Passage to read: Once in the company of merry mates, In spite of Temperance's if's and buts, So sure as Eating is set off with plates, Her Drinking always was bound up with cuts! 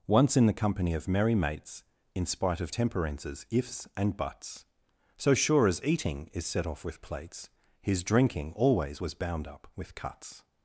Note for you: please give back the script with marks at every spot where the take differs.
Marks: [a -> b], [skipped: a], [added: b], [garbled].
Once in the company of merry mates, In spite of Temperance's if's and buts, So sure as Eating is set off with plates, [Her -> His] Drinking always was bound up with cuts!